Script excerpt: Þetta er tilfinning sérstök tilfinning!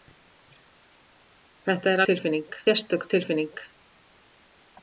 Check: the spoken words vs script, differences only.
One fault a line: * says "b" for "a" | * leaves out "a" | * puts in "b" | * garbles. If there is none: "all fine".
all fine